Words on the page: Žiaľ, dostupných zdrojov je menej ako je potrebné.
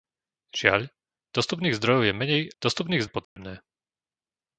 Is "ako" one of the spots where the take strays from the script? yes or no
yes